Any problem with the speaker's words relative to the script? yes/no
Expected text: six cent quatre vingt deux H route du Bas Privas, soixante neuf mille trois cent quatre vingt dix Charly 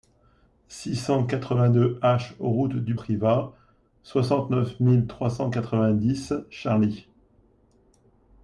yes